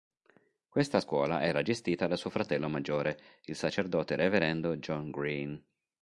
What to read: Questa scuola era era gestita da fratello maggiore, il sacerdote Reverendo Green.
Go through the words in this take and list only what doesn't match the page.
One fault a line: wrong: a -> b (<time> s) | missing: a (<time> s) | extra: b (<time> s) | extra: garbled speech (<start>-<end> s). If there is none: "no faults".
missing: era (1.6 s)
extra: suo (2.1 s)
extra: John (4.8 s)